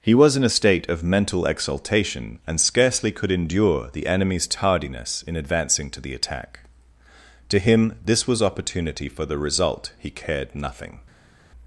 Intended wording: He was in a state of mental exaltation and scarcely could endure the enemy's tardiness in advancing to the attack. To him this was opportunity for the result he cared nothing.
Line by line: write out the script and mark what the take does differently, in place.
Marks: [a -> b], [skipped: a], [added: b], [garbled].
He was in a state of mental exaltation and scarcely could endure the enemy's tardiness in advancing to the attack. To him this was opportunity for the result he cared nothing.